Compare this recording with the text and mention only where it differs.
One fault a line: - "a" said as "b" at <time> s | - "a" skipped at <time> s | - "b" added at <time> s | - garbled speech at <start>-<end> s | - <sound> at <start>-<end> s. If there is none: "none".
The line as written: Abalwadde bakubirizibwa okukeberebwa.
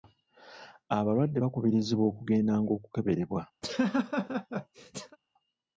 - "okugendanga" added at 2.1 s
- laugh at 3.6-5.2 s